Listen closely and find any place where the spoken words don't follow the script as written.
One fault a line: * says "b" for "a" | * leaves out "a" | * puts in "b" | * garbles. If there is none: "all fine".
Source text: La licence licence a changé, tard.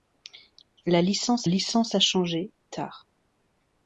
all fine